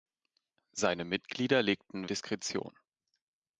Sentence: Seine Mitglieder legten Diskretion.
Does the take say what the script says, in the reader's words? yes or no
yes